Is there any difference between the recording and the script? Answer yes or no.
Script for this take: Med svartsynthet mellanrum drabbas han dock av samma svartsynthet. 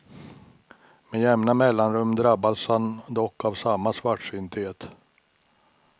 yes